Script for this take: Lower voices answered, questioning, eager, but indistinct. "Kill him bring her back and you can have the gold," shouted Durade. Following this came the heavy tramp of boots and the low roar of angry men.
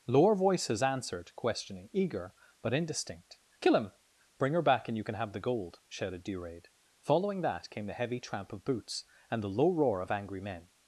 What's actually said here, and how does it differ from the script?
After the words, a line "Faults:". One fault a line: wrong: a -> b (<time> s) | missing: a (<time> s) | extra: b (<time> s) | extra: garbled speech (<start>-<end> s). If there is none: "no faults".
Lower voices answered, questioning, eager, but indistinct. "Kill him bring her back and you can have the gold," shouted Durade. Following that came the heavy tramp of boots and the low roar of angry men.
Faults:
wrong: this -> that (7.4 s)